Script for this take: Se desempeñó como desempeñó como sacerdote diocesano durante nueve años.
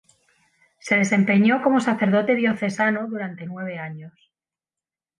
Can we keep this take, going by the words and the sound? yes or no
no